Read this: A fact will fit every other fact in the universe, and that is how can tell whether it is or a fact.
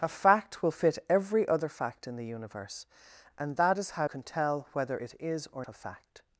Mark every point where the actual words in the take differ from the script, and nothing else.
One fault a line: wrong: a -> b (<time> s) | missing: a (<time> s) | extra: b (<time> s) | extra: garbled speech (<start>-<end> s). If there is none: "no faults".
no faults